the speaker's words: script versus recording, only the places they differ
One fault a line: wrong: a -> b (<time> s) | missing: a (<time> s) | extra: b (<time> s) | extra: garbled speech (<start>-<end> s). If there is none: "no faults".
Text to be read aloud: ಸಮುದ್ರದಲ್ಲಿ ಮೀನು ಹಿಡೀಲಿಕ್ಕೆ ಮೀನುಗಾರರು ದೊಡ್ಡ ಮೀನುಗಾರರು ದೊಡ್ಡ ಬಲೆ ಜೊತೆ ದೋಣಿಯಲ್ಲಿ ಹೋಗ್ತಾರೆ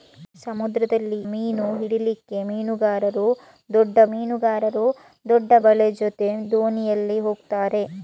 no faults